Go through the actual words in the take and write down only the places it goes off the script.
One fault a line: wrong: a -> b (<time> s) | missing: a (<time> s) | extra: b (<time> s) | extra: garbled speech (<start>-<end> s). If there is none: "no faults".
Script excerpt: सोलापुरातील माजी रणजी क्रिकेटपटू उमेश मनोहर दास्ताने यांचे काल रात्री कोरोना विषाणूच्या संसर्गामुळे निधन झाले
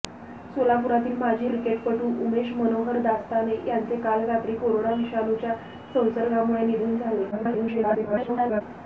missing: रणजी (1.5 s)
extra: garbled speech (7.3-8.6 s)